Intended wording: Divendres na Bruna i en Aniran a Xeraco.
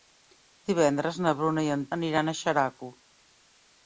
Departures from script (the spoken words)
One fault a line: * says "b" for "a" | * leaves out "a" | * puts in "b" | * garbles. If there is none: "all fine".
all fine